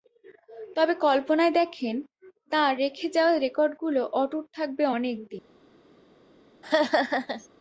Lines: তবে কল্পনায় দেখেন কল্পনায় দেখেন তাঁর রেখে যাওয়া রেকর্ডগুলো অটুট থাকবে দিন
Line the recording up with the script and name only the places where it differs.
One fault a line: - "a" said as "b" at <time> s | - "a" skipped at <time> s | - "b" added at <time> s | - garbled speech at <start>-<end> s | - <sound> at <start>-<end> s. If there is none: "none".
- "কল্পনায় দেখেন" skipped at 1.9 s
- "অনেক" added at 4.9 s
- laugh at 6.6-7.5 s